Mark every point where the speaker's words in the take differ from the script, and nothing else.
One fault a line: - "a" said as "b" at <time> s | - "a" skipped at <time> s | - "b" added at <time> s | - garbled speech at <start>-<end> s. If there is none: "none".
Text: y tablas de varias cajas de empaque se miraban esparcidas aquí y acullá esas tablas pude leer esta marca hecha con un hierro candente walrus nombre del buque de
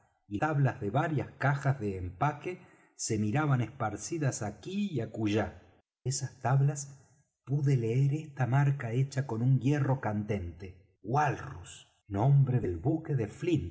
none